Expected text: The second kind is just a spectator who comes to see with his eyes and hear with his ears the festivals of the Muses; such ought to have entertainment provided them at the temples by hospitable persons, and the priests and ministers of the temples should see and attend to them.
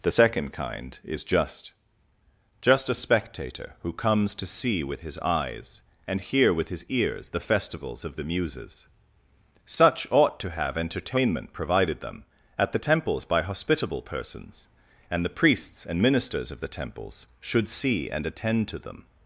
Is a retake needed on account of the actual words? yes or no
yes